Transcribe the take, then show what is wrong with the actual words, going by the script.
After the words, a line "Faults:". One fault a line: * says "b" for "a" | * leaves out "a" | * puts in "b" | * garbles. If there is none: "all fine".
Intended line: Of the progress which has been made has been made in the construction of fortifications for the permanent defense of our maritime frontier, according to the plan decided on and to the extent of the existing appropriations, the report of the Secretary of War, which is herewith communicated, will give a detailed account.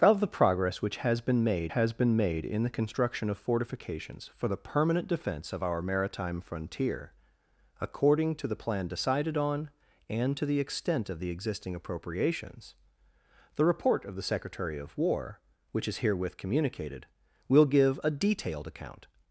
Of the progress which has been made has been made in the construction of fortifications for the permanent defense of our maritime frontier, according to the plan decided on and to the extent of the existing appropriations, the report of the Secretary of War, which is herewith communicated, will give a detailed account.
Faults:
all fine